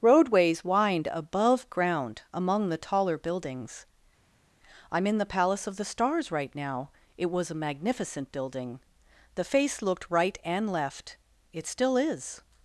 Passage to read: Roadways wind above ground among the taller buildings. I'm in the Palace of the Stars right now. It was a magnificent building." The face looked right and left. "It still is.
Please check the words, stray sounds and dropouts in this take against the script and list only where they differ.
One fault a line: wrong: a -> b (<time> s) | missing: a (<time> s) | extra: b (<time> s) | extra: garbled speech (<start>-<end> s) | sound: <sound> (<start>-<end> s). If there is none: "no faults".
no faults